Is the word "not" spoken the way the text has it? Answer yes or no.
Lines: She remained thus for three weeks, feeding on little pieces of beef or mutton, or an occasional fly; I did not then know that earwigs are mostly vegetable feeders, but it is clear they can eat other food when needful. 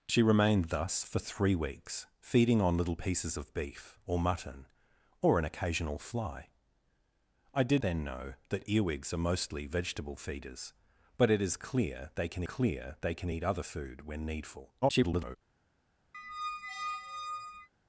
no